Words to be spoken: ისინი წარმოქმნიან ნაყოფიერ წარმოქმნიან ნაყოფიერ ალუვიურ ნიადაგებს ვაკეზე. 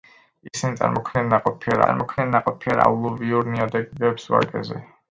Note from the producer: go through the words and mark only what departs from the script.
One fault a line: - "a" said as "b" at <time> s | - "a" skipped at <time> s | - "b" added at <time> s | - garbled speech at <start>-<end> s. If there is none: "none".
none